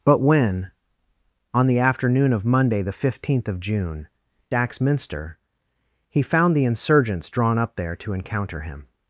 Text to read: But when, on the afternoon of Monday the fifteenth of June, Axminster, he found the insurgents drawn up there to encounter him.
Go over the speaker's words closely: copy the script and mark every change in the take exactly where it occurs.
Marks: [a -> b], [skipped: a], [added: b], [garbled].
But when, on the afternoon of Monday the fifteenth of June, Axminster, he found the insurgents drawn up there to encounter him.